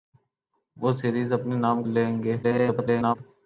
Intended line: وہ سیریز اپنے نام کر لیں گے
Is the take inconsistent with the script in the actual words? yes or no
yes